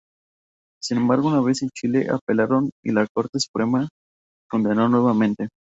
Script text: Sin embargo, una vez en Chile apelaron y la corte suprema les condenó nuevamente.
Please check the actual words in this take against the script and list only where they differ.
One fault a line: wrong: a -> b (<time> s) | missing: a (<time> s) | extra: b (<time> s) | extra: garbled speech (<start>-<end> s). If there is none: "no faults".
missing: les (3.9 s)